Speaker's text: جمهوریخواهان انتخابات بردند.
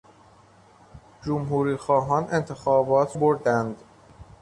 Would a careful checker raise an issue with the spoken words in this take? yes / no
no